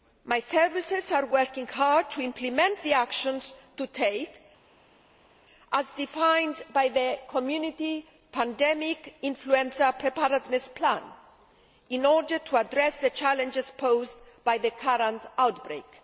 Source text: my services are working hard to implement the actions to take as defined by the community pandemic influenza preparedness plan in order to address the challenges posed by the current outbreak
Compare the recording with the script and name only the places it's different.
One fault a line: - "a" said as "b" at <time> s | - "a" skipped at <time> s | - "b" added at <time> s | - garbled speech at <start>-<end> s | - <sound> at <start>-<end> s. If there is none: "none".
none